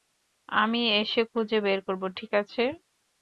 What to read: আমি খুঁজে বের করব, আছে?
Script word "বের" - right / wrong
right